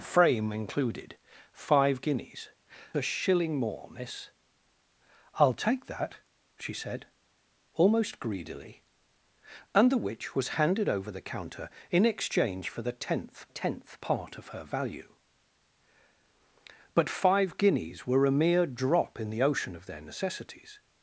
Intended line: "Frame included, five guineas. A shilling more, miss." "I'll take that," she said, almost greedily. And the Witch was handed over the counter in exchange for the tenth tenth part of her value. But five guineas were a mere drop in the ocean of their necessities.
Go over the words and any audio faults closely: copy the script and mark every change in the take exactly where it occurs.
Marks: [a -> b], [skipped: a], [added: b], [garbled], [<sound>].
"Frame included, five guineas. A shilling more, miss." "I'll take that," she said, almost greedily. And the Witch was handed over the counter in exchange for the tenth tenth part of her value. But five guineas were a mere drop in the ocean of their necessities.